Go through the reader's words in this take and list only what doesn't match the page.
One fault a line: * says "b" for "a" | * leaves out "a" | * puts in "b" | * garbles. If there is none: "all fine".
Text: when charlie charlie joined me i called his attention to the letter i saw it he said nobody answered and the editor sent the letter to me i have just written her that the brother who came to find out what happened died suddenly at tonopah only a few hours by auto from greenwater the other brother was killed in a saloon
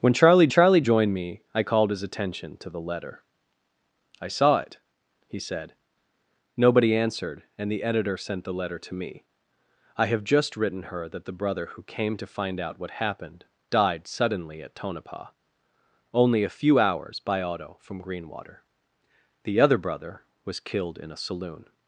all fine